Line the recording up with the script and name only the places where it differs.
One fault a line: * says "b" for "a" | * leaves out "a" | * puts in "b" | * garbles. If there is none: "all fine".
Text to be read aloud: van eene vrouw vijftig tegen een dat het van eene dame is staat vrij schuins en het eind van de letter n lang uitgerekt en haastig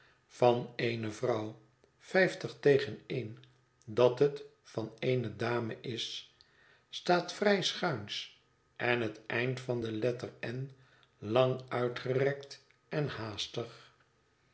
all fine